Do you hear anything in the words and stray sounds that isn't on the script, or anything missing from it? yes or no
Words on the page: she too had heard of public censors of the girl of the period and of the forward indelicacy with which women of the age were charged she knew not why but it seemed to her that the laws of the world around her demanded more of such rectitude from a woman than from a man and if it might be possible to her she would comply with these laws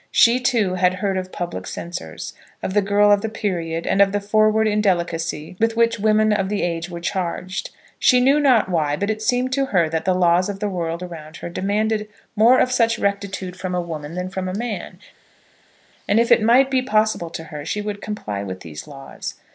no